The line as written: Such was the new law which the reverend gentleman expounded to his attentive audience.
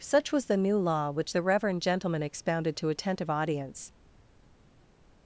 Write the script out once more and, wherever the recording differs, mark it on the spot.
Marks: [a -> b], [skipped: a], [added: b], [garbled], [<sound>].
Such was the new law which the reverend gentleman expounded to [skipped: his] attentive audience.